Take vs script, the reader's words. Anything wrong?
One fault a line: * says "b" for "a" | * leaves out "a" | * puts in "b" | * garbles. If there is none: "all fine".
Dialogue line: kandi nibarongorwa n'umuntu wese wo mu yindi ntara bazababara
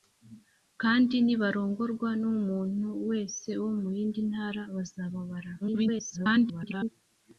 * garbles